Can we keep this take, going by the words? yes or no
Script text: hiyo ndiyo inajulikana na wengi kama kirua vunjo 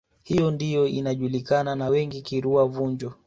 no